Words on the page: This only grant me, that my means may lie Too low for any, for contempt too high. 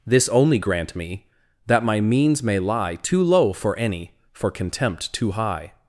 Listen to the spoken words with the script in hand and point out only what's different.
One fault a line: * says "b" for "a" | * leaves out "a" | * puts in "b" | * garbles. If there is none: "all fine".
all fine